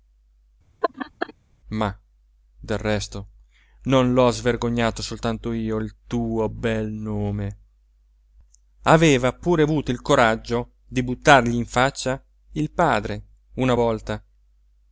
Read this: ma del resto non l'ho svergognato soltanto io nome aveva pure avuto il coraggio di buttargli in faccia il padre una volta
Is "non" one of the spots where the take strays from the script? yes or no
no